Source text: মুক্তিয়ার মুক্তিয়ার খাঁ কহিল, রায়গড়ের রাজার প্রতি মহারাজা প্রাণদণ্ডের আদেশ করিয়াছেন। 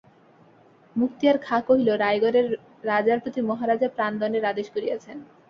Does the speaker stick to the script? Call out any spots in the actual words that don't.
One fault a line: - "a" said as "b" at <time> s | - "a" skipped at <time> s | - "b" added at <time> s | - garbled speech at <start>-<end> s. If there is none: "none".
- "মুক্তিয়ার" skipped at 1.4 s